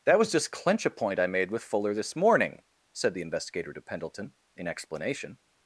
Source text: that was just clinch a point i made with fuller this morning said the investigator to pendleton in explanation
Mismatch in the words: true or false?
false